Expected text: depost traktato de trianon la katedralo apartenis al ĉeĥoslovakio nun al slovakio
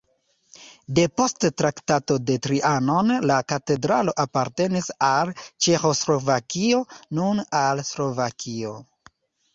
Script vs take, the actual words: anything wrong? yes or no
no